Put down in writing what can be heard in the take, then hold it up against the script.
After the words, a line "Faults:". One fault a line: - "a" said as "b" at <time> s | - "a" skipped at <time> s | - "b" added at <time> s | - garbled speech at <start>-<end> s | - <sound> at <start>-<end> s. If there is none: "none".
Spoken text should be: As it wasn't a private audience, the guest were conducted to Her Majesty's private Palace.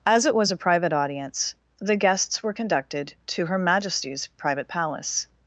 As it was a private audience, the guests were conducted to Her Majesty's private Palace.
Faults:
- "wasn't" said as "was" at 0.3 s
- "guest" said as "guests" at 2.0 s